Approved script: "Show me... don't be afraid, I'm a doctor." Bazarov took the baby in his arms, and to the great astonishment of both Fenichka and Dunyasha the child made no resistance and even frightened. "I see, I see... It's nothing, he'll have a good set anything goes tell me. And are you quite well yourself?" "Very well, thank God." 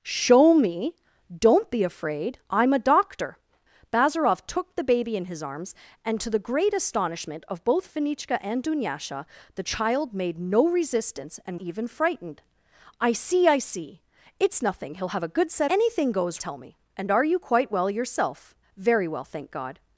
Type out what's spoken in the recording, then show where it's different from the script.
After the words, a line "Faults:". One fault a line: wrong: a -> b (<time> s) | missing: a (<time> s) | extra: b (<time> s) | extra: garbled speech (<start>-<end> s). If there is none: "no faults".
"Show me... don't be afraid, I'm a doctor." Bazarov took the baby in his arms, and to the great astonishment of both Fenichka and Dunyasha the child made no resistance and even frightened. "I see, I see... It's nothing, he'll have a good set anything goes tell me. And are you quite well yourself?" "Very well, thank God."
Faults:
no faults